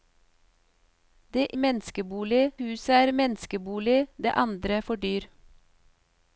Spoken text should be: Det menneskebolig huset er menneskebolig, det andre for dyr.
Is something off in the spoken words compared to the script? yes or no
no